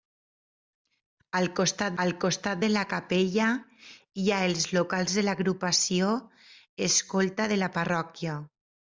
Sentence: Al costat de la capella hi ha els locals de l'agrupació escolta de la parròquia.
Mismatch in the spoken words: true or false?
true